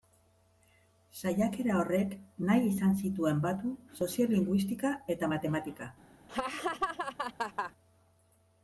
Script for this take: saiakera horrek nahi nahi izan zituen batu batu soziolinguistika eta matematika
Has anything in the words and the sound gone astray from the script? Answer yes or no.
yes